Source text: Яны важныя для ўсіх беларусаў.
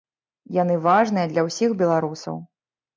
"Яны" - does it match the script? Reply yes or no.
yes